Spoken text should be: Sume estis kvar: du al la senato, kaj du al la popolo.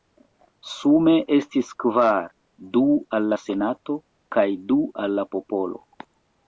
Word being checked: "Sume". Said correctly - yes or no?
yes